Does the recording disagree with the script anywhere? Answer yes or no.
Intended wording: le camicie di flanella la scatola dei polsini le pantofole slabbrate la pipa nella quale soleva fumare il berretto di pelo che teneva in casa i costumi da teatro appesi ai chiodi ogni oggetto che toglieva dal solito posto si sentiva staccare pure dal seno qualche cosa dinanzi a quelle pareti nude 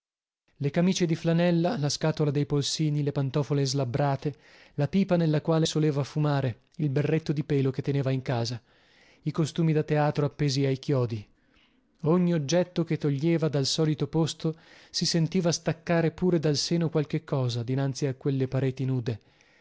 no